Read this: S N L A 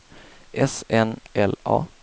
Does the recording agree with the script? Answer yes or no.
yes